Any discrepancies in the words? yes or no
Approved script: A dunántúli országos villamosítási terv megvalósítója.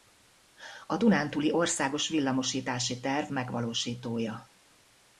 no